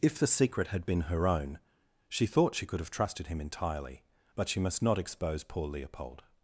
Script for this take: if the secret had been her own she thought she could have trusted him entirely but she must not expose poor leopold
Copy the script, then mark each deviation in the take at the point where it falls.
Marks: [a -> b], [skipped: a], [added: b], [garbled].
if the secret had been her own she thought she could have trusted him entirely but she must not expose poor leopold